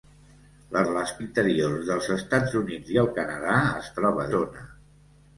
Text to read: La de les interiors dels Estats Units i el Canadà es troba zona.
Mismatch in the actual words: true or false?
false